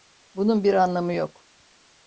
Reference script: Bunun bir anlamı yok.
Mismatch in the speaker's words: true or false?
false